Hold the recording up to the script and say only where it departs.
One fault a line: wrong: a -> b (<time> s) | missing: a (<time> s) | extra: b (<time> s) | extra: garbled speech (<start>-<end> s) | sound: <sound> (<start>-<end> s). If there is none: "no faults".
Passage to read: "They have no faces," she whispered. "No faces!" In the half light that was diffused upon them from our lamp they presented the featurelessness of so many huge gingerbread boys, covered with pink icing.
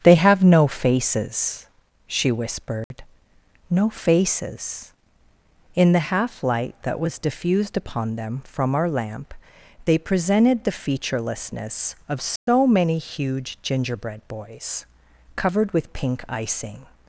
sound: dropout (2.8-2.9 s)
sound: dropout (12.4-12.5 s)